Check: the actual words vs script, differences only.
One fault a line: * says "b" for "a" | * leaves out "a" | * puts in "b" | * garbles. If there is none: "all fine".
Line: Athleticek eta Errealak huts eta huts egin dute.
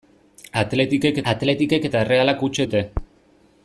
* puts in "athleticek"
* leaves out "eta huts egin"